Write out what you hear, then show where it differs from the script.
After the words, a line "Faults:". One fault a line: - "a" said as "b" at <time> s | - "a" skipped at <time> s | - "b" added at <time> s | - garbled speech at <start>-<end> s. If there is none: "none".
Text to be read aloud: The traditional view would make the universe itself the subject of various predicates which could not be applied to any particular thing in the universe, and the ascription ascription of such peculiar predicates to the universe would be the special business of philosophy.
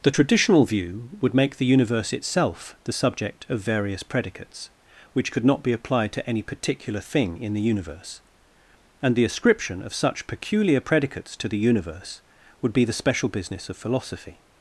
The traditional view would make the universe itself the subject of various predicates which could not be applied to any particular thing in the universe, and the ascription of such peculiar predicates to the universe would be the special business of philosophy.
Faults:
- "ascription" skipped at 9.8 s